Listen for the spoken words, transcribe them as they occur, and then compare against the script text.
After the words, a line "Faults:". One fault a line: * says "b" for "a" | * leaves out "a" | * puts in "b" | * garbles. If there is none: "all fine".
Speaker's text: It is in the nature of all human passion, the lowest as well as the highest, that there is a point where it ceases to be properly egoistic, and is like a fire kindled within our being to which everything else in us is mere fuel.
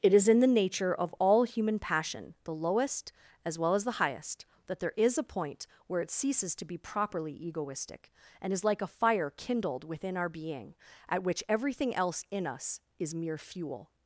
It is in the nature of all human passion, the lowest as well as the highest, that there is a point where it ceases to be properly egoistic, and is like a fire kindled within our being at which everything else in us is mere fuel.
Faults:
* says "at" for "to"